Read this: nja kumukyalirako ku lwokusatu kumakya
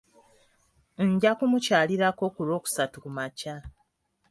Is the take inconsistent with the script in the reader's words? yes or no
no